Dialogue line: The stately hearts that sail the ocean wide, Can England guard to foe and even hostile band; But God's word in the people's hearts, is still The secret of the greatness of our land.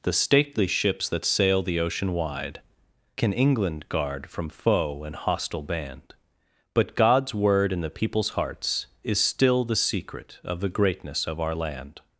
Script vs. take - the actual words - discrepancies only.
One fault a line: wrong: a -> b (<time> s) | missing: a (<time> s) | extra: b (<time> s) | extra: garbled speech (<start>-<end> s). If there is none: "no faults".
wrong: hearts -> ships (0.7 s)
wrong: to -> from (4.3 s)
missing: even (5.1 s)